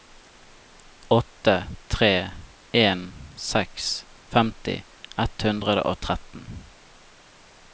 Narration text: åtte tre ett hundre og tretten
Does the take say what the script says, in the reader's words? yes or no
no